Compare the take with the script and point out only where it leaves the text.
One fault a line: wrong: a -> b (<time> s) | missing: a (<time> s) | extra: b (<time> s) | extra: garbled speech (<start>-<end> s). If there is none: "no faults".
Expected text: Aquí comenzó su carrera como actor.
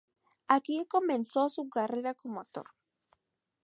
no faults